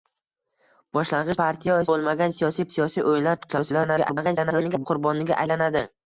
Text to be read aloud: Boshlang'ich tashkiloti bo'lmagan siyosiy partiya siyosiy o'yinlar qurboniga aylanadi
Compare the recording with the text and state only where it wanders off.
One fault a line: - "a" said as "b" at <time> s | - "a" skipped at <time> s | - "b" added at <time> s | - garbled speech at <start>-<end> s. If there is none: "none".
- "tashkiloti" said as "partiya" at 1.4 s
- "partiya" skipped at 2.7 s
- garbled speech at 3.5-4.9 s